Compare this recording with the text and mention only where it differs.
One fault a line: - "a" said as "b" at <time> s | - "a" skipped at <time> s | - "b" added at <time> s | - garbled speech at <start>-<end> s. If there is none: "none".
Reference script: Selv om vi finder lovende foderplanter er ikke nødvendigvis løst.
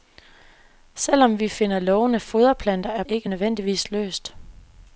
none